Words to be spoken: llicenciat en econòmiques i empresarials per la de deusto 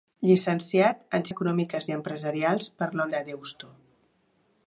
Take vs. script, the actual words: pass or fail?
pass